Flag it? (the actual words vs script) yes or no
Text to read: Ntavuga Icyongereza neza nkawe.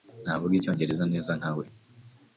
no